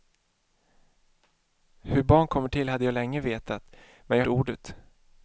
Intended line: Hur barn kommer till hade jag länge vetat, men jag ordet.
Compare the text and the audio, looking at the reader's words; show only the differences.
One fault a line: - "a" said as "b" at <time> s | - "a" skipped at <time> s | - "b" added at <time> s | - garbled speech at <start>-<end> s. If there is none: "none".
none